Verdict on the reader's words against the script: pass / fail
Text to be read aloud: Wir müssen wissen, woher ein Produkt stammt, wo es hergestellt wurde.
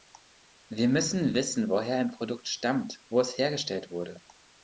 pass